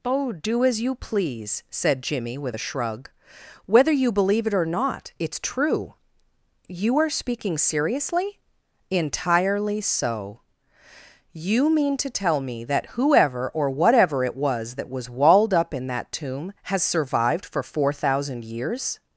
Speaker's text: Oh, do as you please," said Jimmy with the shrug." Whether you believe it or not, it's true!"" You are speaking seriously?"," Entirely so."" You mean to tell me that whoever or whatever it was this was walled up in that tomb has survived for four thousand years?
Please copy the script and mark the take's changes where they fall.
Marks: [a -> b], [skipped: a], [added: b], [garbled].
Oh, do as you please," said Jimmy with [the -> a] shrug." Whether you believe it or not, it's true!"" You are speaking seriously?"," Entirely so."" You mean to tell me that whoever or whatever it was [this -> that] was walled up in that tomb has survived for four thousand years?